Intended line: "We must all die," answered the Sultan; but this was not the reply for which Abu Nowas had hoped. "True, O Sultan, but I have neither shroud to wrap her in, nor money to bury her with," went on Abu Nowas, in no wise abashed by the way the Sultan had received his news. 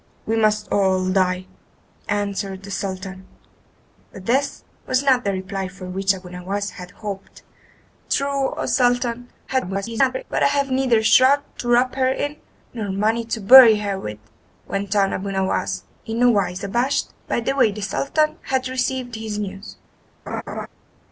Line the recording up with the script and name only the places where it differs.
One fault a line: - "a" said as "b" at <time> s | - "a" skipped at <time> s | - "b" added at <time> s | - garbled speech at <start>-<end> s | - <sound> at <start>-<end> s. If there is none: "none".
- garbled speech at 9.5-10.2 s
- laugh at 20.3-20.7 s